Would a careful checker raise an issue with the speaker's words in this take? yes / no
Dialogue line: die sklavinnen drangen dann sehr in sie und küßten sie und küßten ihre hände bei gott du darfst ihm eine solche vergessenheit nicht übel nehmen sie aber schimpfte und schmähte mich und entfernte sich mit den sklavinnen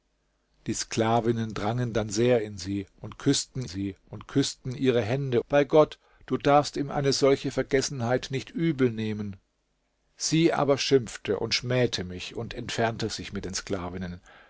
no